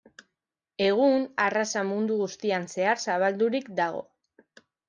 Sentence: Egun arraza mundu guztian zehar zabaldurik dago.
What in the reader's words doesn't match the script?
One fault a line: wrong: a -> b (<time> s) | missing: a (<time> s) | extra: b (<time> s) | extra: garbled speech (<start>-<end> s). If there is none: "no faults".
no faults